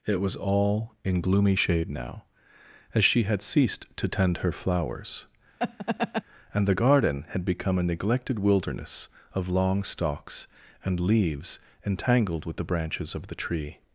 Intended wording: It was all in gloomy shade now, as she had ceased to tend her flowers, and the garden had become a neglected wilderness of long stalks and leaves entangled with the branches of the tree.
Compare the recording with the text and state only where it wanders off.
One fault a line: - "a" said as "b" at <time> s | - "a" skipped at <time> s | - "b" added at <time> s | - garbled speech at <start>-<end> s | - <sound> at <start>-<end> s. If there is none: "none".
- laugh at 5.6-6.2 s